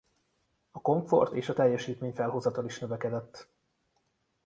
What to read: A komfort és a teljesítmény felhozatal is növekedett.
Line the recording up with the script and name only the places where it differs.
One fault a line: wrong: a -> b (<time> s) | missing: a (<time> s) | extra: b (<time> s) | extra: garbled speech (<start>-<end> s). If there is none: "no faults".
no faults